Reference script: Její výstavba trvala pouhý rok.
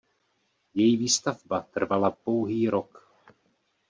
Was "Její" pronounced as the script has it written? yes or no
yes